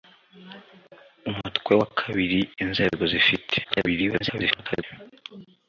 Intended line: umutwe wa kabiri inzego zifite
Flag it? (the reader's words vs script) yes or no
yes